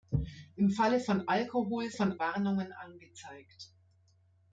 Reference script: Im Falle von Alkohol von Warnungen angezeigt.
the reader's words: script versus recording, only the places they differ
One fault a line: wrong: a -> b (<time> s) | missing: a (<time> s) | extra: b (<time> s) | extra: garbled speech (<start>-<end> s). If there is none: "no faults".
no faults